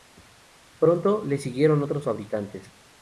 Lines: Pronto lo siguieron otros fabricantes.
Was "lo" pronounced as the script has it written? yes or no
no